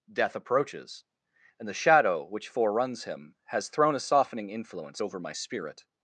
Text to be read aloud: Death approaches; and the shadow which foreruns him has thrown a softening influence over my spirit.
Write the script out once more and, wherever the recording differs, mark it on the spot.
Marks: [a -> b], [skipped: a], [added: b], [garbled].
Death approaches; and the shadow which foreruns him has thrown a softening influence over my spirit.